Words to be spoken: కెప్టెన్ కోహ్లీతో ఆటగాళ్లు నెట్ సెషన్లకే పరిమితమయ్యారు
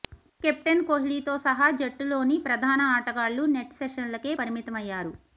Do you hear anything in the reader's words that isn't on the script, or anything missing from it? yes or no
yes